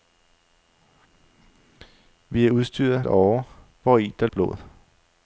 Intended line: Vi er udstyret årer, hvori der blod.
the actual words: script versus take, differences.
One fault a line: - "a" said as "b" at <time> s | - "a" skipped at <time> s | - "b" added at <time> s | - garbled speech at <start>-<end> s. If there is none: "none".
none